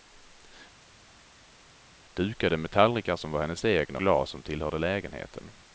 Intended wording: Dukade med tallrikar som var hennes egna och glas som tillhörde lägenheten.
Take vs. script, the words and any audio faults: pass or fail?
fail